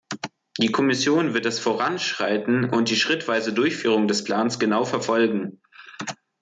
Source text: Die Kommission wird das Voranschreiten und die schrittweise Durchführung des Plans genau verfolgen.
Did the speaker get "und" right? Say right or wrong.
right